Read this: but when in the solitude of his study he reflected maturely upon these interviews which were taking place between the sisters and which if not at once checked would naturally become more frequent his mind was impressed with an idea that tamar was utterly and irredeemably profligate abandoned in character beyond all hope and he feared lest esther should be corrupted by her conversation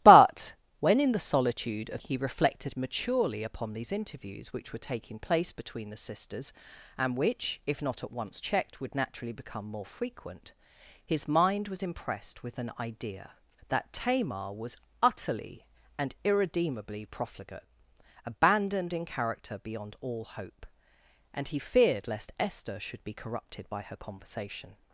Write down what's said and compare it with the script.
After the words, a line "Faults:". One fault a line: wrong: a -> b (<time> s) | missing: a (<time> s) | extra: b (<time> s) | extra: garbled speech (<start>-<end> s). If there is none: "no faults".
but when in the solitude of he reflected maturely upon these interviews which were taking place between the sisters and which if not at once checked would naturally become more frequent his mind was impressed with an idea that tamar was utterly and irredeemably profligate abandoned in character beyond all hope and he feared lest esther should be corrupted by her conversation
Faults:
missing: his study (2.0 s)